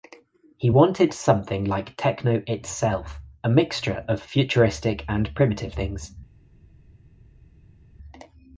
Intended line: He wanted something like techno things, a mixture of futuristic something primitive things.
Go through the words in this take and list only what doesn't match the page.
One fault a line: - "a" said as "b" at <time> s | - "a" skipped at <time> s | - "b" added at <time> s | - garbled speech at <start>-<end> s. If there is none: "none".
- "things" said as "itself" at 2.5 s
- "something" said as "and" at 5.1 s